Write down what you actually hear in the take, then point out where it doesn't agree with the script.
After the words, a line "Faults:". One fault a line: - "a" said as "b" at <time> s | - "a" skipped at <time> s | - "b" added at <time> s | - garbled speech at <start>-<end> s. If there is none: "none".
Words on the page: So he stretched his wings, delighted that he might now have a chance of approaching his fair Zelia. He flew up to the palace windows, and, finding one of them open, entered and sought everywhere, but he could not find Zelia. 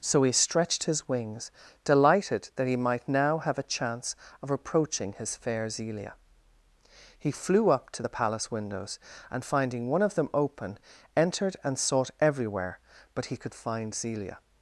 So he stretched his wings, delighted that he might now have a chance of approaching his fair Zelia. He flew up to the palace windows, and, finding one of them open, entered and sought everywhere, but he could find Zelia.
Faults:
- "not" skipped at 13.6 s